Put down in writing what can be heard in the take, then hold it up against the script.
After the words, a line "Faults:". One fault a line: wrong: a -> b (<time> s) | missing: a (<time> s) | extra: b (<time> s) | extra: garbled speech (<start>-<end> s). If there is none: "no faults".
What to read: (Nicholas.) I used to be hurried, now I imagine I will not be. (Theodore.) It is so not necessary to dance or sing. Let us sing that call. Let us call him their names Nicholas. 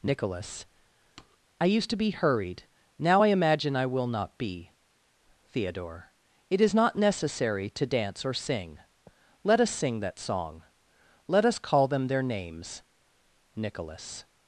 (Nicholas.) I used to be hurried, now I imagine I will not be. (Theodore.) It is not necessary to dance or sing. Let us sing that song. Let us call them their names Nicholas.
Faults:
missing: so (6.7 s)
wrong: call -> song (10.2 s)
wrong: him -> them (11.9 s)